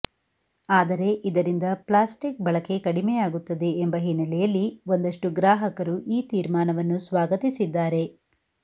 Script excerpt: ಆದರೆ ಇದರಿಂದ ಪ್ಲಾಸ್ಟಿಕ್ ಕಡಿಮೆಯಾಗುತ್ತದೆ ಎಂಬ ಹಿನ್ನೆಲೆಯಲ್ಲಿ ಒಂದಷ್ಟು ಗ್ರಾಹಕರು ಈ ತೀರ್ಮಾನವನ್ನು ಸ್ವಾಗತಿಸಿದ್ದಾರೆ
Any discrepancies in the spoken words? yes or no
yes